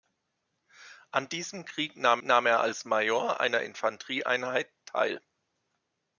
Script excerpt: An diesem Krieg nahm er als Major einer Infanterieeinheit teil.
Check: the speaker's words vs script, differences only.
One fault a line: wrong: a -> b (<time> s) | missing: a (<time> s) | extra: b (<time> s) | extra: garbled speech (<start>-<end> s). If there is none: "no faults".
extra: nahm (2.2 s)